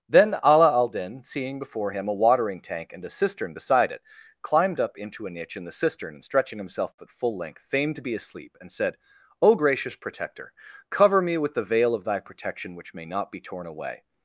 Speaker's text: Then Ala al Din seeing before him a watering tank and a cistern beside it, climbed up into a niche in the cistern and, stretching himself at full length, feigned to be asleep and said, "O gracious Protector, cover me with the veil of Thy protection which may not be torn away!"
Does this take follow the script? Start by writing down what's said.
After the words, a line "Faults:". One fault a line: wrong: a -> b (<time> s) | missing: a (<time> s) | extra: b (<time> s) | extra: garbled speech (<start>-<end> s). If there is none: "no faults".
Then Ala al Din seeing before him a watering tank and a cistern beside it, climbed up into a niche in the cistern and, stretching himself at full length, feigned to be asleep and said, "O gracious Protector, cover me with the veil of Thy protection which may not be torn away!"
Faults:
no faults